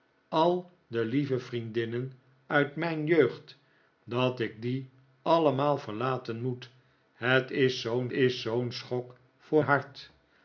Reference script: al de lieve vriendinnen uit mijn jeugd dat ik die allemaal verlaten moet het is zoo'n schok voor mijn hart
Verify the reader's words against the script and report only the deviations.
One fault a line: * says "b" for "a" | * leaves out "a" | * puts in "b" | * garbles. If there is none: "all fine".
* puts in "is zoo'n"
* leaves out "mijn"